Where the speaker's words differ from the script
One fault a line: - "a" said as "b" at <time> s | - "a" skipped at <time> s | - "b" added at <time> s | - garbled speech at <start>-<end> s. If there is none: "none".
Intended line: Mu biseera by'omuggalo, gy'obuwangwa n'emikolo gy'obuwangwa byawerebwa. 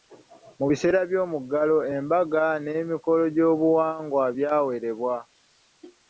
- "gy'obuwangwa" said as "embaga" at 2.0 s